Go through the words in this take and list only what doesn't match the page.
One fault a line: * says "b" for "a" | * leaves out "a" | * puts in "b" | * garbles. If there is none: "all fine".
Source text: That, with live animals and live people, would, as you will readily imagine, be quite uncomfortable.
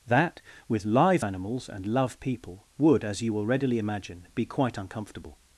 * says "love" for "live"